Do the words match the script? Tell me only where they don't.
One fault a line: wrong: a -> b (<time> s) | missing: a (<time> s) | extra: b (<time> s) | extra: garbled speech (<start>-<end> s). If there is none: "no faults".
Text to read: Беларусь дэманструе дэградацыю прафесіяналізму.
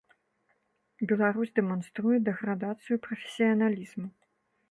no faults